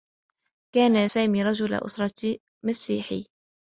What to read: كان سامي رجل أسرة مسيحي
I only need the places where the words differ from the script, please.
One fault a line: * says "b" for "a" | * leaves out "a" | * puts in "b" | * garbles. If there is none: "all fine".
all fine